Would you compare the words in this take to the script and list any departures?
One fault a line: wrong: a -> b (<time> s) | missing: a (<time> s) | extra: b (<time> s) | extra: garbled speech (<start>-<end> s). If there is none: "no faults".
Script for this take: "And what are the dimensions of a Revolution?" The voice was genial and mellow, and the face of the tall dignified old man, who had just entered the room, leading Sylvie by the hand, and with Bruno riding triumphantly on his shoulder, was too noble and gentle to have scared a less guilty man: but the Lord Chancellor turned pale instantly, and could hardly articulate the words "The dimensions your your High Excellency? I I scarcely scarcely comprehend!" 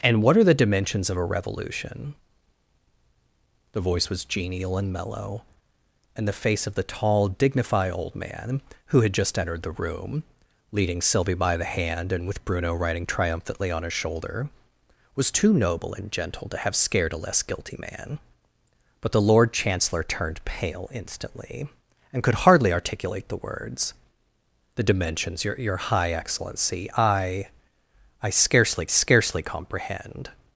no faults